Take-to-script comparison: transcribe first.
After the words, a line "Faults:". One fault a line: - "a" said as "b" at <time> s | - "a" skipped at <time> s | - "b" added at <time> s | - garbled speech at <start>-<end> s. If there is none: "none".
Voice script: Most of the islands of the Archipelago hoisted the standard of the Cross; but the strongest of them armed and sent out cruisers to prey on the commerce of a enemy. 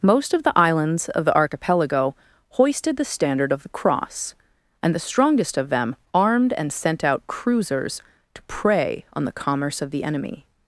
Most of the islands of the Archipelago hoisted the standard of the Cross; and the strongest of them armed and sent out cruisers to prey on the commerce of the enemy.
Faults:
- "but" said as "and" at 4.8 s
- "a" said as "the" at 9.9 s